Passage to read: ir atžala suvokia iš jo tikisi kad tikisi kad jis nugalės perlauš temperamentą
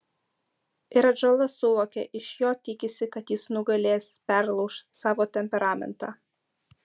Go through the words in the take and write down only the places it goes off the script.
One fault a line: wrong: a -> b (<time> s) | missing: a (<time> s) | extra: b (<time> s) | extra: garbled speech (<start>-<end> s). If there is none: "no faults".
missing: tikisi kad (3.4 s)
extra: savo (5.0 s)